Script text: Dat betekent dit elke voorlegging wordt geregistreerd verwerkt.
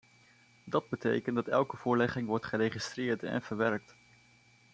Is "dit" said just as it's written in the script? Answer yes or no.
no